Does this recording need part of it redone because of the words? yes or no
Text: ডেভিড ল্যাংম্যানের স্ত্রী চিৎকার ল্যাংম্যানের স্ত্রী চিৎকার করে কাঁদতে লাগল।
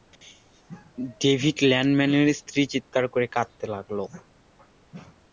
yes